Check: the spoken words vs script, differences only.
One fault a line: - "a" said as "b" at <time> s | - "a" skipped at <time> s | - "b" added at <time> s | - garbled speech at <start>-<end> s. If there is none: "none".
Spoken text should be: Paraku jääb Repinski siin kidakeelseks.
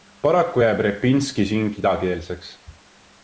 none